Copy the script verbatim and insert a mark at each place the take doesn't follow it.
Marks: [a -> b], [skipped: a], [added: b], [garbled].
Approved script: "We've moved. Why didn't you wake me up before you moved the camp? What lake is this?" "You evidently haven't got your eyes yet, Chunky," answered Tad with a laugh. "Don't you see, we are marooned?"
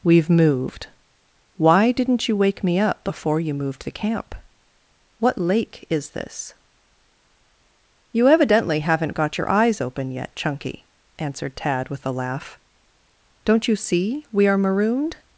"We've moved. Why didn't you wake me up before you moved the camp? What lake is this?" "You evidently haven't got your eyes [added: open] yet, Chunky," answered Tad with a laugh. "Don't you see, we are marooned?"